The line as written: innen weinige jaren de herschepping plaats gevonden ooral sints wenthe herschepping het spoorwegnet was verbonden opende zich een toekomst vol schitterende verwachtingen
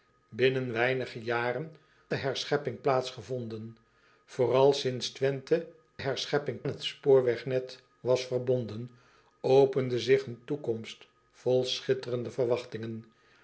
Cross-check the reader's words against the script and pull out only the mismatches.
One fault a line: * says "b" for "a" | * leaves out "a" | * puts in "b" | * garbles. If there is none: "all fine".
all fine